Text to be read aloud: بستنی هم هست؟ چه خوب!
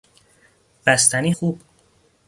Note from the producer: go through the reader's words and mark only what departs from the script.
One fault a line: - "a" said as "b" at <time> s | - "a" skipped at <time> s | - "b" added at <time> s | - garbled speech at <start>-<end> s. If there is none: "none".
- "هم هست چه" skipped at 1.3 s